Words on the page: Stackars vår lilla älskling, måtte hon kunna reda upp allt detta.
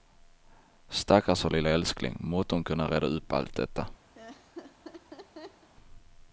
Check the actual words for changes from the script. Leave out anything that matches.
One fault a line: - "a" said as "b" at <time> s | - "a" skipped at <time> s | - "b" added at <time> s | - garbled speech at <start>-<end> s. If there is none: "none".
none